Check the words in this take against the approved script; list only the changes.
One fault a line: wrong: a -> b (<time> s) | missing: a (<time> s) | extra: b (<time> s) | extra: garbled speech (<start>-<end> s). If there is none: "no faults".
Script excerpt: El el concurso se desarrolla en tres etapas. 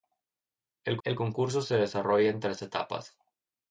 no faults